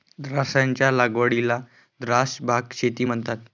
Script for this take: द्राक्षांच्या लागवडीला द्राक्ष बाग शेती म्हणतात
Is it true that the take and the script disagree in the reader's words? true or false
false